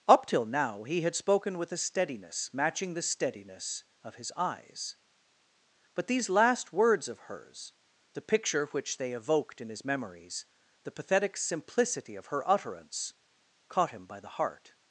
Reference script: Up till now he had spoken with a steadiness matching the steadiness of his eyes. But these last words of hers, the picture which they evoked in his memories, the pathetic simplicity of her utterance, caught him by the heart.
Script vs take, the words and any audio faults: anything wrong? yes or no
no